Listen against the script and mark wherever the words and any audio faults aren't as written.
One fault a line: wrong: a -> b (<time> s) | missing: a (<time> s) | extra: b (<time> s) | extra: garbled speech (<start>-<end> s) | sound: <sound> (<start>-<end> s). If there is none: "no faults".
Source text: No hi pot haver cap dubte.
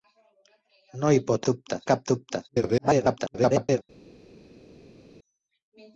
wrong: haver -> dubte (1.5 s)
extra: garbled speech (2.5-3.8 s)